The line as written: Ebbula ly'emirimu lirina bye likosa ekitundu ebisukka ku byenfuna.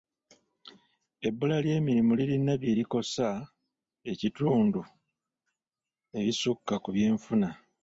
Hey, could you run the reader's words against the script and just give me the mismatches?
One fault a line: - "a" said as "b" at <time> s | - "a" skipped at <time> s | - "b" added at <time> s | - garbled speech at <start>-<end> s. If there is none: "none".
none